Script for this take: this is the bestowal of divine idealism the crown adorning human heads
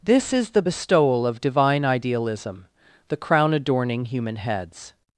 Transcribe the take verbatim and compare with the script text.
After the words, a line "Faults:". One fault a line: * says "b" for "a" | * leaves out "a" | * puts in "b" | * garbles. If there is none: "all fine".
this is the bestowal of divine idealism the crown adorning human heads
Faults:
all fine